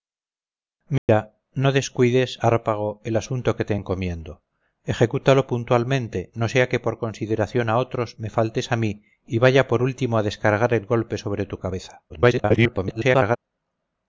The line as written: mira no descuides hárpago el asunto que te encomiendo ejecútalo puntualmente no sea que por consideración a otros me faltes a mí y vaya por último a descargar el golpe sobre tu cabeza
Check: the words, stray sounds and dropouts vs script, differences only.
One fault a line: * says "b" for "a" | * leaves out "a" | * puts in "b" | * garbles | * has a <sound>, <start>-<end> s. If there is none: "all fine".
* has a dropout, 1.0-1.1 s
* garbles